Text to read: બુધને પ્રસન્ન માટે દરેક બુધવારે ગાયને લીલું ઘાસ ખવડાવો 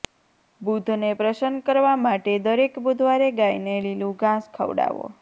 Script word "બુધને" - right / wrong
right